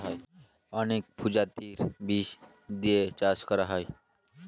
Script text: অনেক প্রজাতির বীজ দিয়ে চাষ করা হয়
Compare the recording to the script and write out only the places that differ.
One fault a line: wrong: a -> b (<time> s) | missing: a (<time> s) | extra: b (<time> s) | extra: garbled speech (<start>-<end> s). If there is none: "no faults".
no faults